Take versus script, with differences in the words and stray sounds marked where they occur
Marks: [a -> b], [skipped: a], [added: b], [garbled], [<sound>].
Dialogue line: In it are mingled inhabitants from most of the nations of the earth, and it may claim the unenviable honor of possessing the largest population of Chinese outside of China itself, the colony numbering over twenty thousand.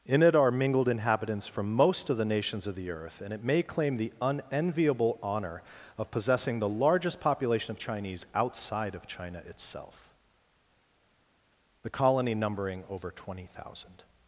In it are mingled inhabitants from most of the nations of the earth, and it may claim the unenviable honor of possessing the largest population of Chinese outside of China itself, the colony numbering over twenty thousand.